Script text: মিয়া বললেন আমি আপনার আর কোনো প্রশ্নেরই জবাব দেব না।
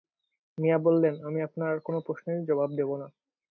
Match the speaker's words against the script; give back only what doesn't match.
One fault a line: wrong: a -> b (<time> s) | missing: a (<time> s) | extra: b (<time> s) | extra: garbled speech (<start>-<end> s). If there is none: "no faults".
no faults